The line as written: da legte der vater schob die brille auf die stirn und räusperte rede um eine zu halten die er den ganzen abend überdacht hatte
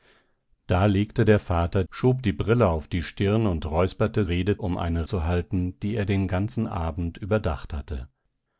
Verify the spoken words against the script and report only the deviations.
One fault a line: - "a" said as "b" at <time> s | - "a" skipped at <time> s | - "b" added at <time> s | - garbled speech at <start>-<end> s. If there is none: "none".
none